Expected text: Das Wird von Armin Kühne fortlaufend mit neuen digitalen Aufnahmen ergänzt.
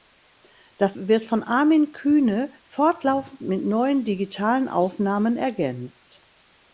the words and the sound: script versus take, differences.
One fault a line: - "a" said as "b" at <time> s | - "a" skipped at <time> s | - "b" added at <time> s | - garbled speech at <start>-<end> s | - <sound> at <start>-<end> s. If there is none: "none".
none